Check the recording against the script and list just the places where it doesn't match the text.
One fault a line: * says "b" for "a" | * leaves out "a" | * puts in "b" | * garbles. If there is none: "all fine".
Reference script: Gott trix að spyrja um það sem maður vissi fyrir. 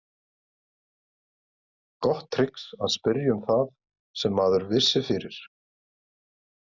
all fine